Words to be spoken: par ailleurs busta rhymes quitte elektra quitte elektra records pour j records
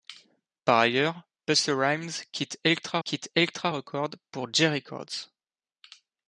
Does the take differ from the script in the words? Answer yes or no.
no